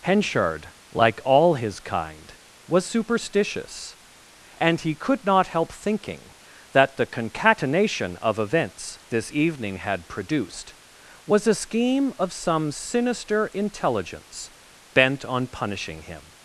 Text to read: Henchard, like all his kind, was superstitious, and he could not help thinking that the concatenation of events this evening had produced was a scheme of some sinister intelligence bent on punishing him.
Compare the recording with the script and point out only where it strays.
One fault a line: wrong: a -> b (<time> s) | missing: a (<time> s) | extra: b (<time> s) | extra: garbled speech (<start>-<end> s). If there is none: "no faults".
no faults